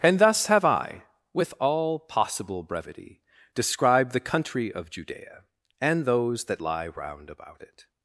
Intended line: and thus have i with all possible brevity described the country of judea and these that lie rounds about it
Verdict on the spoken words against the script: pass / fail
fail